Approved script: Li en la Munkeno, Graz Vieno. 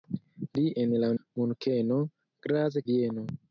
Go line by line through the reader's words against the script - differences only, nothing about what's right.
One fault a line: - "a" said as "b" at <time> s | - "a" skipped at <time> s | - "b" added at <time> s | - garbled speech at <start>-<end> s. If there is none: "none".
none